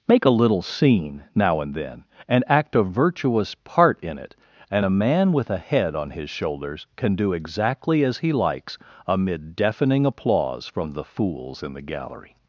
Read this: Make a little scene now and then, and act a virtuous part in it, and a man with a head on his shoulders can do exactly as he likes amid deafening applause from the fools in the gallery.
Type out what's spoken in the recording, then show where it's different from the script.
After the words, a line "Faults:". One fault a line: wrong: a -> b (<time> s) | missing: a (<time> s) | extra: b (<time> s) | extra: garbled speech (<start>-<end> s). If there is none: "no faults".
Make a little scene now and then, and act a virtuous part in it, and a man with a head on his shoulders can do exactly as he likes amid deafening applause from the fools in the gallery.
Faults:
no faults